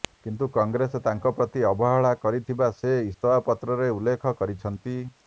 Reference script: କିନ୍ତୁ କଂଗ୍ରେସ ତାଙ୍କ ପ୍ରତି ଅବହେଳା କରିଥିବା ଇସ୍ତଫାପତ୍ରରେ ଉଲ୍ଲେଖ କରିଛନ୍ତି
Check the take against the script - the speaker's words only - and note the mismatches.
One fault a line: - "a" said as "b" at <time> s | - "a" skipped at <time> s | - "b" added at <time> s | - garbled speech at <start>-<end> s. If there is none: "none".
- "ସେ" added at 2.8 s